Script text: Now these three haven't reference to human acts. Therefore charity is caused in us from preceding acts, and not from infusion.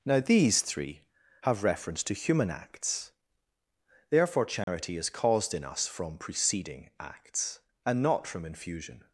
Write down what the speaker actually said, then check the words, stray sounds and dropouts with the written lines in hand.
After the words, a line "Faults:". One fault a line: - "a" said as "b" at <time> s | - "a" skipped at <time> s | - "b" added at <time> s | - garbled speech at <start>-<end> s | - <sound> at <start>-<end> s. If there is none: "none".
Now these three have reference to human acts. Therefore charity is caused in us from preceding acts, and not from infusion.
Faults:
- "haven't" said as "have" at 1.4 s
- dropout at 4.6-4.7 s